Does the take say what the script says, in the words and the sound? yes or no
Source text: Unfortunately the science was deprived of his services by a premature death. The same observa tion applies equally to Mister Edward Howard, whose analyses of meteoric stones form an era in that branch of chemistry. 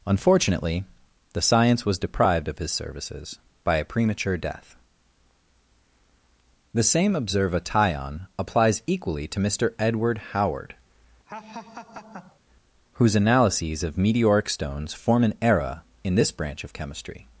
no